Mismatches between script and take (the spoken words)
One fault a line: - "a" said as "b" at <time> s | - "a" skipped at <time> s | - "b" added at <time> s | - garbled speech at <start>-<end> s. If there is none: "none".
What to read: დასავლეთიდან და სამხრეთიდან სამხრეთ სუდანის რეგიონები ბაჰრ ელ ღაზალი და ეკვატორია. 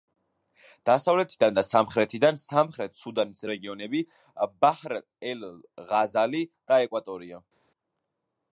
none